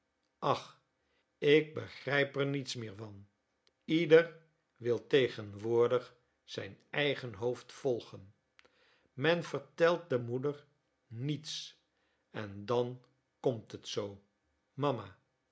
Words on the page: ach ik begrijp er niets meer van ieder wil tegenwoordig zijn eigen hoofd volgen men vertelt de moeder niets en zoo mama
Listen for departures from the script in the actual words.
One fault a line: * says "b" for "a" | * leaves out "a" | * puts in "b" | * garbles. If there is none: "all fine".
* puts in "dan komt het"